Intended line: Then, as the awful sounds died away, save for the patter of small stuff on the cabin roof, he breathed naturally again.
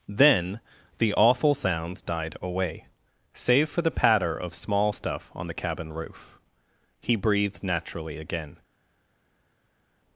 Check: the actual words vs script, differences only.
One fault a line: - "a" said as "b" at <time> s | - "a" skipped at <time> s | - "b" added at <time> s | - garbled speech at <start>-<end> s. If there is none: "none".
- "as" skipped at 0.6 s